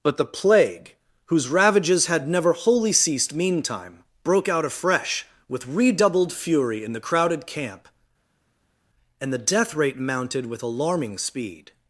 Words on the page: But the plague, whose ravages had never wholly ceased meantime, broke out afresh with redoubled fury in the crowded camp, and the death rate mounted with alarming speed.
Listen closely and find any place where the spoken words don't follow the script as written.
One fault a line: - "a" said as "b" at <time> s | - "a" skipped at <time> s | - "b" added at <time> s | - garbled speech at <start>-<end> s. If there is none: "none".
none